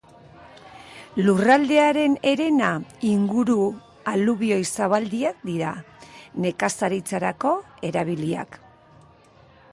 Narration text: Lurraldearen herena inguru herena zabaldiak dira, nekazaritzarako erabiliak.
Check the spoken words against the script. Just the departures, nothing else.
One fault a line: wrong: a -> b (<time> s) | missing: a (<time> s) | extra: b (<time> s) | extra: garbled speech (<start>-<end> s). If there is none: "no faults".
wrong: herena -> alubioi (4.1 s)